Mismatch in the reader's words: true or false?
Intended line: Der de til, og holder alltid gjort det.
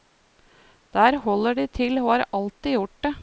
true